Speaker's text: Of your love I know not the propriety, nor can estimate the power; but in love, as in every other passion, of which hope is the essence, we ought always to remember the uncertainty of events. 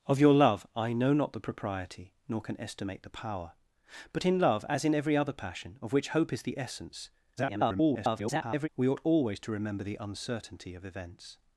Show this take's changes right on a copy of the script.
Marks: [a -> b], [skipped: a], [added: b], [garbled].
Of your love I know not the propriety, nor can estimate the power; but in love, as in every other passion, of which hope is the essence, [garbled] we ought always to remember the uncertainty of events.